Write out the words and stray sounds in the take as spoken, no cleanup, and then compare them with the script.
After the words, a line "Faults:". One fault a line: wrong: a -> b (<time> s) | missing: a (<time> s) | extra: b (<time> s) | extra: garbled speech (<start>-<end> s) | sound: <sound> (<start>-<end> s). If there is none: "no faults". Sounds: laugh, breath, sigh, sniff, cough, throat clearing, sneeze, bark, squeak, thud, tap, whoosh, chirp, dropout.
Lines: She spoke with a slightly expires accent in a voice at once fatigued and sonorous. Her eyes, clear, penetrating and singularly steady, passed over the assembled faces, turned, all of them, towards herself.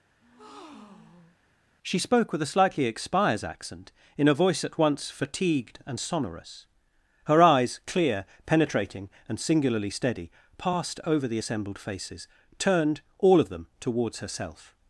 She spoke with a slightly expires accent in a voice at once fatigued and sonorous. Her eyes, clear, penetrating and singularly steady, passed over the assembled faces, turned, all of them, towards herself.
Faults:
sound: breath (0.2-1.4 s)